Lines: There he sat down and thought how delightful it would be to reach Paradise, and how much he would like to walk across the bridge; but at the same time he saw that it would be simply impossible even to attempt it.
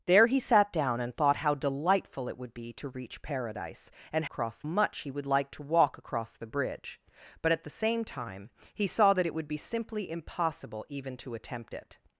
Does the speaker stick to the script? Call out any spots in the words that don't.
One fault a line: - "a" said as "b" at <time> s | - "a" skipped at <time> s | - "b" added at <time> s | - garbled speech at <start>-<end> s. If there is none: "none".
- "how" said as "across" at 4.2 s